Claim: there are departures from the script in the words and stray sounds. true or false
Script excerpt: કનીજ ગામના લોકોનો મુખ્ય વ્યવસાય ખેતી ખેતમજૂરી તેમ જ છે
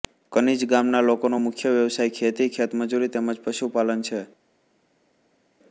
true